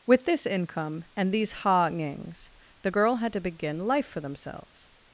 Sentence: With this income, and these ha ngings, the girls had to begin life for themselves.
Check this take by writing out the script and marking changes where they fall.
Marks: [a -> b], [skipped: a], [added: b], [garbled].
With this income, and these ha ngings, the [girls -> girl] had to begin life for themselves.